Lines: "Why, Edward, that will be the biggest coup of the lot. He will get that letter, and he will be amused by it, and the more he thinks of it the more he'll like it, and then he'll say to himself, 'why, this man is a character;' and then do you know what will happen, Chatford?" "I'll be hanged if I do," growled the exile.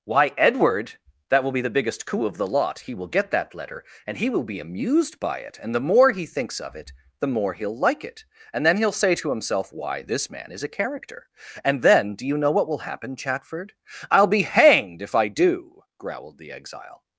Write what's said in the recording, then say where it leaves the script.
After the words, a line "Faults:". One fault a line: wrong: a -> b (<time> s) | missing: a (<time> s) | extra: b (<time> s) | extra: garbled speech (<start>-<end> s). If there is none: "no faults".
"Why, Edward, that will be the biggest coup of the lot. He will get that letter, and he will be amused by it, and the more he thinks of it the more he'll like it, and then he'll say to himself, 'why, this man is a character;' and then do you know what will happen, Chatford?" "I'll be hanged if I do," growled the exile.
Faults:
no faults